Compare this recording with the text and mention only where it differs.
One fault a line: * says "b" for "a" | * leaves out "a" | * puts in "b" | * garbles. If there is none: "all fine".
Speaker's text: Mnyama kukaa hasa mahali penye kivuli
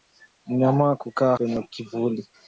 * leaves out "hasa mahali"